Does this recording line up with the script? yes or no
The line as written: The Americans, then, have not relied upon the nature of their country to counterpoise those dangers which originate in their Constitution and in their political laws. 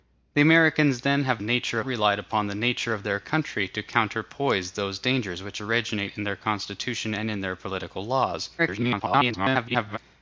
no